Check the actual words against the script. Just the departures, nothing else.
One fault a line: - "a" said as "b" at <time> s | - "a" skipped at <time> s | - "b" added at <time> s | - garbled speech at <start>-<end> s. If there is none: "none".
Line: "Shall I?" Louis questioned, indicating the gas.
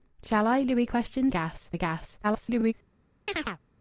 - "indicating" said as "gas" at 1.3 s
- garbled speech at 2.2-2.7 s